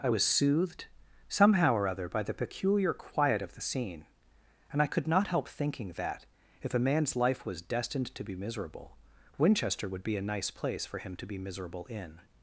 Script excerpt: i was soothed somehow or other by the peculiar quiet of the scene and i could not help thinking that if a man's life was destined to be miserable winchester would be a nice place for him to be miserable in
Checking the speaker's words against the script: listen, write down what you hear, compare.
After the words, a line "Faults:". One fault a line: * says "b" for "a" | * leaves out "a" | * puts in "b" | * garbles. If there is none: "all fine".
i was soothed somehow or other by the peculiar quiet of the scene and i could not help thinking that if a man's life was destined to be miserable winchester would be a nice place for him to be miserable in
Faults:
all fine